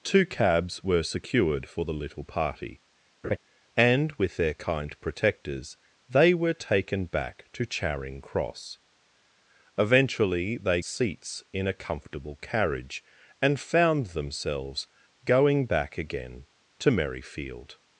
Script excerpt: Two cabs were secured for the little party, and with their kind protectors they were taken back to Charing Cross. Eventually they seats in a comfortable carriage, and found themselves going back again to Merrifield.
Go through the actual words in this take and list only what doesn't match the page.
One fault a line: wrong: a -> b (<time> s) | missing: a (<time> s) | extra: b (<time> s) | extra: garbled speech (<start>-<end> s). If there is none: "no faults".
no faults